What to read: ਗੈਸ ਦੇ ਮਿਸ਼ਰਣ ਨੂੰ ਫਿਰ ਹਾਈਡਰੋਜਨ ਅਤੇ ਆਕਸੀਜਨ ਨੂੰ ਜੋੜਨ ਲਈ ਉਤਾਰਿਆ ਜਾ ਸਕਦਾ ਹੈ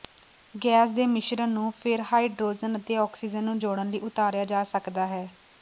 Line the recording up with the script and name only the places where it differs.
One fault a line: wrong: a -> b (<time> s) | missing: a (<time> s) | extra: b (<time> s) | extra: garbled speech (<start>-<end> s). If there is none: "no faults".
no faults